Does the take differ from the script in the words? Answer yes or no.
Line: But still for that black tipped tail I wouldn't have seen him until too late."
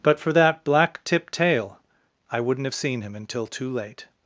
yes